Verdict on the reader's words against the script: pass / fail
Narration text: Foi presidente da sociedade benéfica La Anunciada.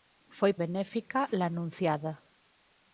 fail